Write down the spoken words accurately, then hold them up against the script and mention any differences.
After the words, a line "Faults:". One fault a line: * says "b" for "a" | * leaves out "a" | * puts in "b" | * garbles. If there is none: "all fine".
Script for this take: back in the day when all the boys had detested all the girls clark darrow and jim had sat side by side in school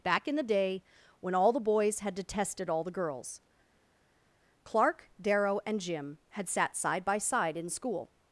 back in the day when all the boys had detested all the girls clark darrow and jim had sat side by side in school
Faults:
all fine